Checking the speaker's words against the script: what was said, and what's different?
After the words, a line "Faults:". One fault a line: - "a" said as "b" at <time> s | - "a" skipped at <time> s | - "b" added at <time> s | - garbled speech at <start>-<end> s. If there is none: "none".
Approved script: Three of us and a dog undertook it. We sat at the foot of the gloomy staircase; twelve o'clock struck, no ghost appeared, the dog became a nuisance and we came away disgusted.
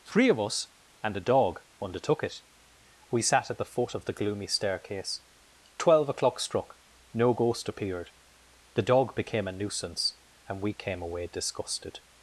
Three of us and a dog undertook it. We sat at the foot of the gloomy staircase; twelve o'clock struck, no ghost appeared, the dog became a nuisance and we came away disgusted.
Faults:
none